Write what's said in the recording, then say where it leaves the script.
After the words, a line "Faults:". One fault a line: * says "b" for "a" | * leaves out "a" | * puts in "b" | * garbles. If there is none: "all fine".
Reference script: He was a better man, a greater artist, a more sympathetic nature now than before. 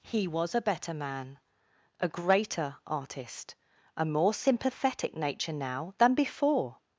He was a better man, a greater artist, a more sympathetic nature now than before.
Faults:
all fine